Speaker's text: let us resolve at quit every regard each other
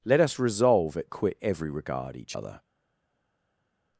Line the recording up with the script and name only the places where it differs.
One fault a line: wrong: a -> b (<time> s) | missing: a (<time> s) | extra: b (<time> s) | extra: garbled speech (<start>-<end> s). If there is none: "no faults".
no faults